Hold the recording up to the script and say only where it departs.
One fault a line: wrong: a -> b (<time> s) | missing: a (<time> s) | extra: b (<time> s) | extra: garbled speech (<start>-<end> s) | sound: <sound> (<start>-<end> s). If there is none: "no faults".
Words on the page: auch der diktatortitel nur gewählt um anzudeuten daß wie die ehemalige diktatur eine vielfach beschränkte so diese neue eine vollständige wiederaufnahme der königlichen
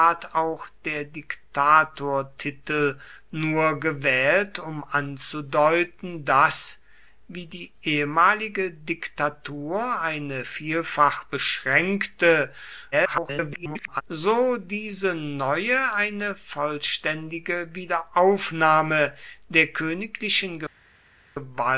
extra: garbled speech (12.9-14.0 s)